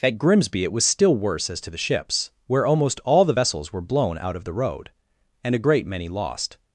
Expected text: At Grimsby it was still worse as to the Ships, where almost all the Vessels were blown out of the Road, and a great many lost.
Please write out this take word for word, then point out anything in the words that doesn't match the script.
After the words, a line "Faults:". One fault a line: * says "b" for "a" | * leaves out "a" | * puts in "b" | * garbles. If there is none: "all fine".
At Grimsby it was still worse as to the Ships, where almost all the Vessels were blown out of the Road, and a great many lost.
Faults:
all fine